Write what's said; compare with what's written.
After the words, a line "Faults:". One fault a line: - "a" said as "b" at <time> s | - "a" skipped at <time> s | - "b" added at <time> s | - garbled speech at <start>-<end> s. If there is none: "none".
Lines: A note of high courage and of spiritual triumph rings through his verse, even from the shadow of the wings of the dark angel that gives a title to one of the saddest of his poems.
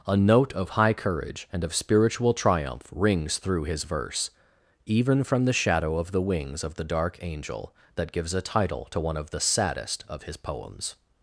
A note of high courage and of spiritual triumph rings through his verse, even from the shadow of the wings of the dark angel that gives a title to one of the saddest of his poems.
Faults:
none